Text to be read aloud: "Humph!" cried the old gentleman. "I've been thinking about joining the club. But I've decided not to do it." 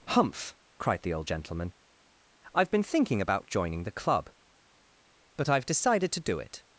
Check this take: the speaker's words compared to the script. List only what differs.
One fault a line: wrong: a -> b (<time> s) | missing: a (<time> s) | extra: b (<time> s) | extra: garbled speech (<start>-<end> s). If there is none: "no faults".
missing: not (6.1 s)